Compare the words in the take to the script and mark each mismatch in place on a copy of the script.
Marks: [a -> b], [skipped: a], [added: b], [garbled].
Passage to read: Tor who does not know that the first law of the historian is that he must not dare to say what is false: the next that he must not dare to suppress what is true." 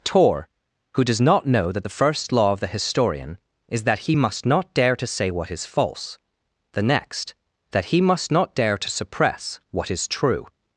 Tor who does not know that the first law of the historian is that he must not dare to say what is false: the next that he must not dare to suppress what is true."